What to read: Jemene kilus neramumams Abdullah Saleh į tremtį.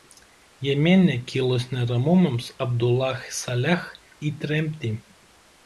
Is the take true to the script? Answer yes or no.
yes